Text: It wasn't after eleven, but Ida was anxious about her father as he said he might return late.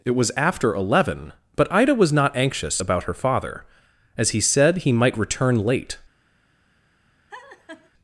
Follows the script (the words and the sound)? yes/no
no